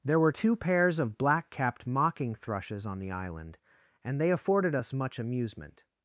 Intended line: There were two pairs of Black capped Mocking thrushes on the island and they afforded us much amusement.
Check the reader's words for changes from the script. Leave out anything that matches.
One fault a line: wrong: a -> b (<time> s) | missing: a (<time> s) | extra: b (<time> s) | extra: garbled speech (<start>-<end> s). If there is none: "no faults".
no faults